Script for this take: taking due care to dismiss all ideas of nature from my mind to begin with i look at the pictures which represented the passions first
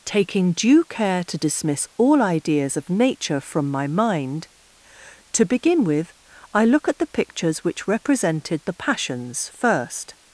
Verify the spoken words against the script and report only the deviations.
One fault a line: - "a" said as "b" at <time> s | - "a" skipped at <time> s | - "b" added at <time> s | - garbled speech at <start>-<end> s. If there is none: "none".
none